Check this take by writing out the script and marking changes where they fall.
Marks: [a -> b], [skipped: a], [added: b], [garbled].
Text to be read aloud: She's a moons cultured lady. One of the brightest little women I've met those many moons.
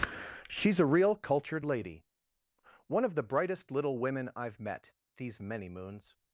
She's a [moons -> real] cultured lady. One of the brightest little women I've met [those -> these] many moons.